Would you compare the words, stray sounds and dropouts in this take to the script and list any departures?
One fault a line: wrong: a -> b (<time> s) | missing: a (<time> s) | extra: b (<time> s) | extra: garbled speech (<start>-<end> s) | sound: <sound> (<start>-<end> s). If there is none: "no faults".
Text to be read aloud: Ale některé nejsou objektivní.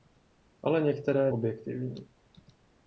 missing: nejsou (1.3 s)